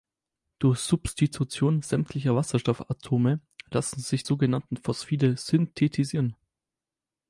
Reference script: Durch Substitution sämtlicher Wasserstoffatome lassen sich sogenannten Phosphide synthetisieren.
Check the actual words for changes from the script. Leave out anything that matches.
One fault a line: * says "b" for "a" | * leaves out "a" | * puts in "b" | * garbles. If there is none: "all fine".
all fine